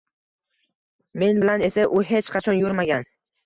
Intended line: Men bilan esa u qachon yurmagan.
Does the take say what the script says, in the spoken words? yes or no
no